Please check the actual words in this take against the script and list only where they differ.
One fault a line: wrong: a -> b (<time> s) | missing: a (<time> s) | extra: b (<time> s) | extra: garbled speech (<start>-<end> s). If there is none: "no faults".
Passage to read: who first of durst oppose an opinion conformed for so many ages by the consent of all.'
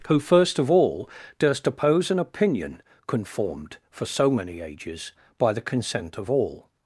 extra: all (0.7 s)